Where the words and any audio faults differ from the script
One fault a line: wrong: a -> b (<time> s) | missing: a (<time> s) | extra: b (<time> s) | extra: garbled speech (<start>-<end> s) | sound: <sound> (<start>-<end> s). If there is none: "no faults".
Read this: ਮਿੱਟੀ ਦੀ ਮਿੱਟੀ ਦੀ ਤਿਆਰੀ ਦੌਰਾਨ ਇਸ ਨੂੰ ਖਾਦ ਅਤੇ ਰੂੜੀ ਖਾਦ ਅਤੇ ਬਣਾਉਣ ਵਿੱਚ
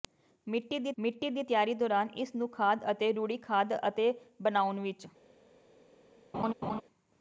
sound: laugh (6.3-6.8 s)